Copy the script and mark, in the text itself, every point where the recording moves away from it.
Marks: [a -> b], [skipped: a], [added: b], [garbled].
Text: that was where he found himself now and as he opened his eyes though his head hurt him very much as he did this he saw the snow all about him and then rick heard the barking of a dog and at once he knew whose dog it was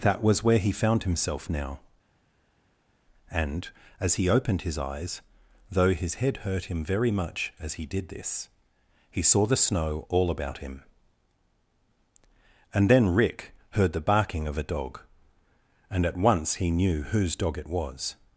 that was where he found himself now and as he opened his eyes though his head hurt him very much as he did this he saw the snow all about him and then rick heard the barking of a dog and at once he knew whose dog it was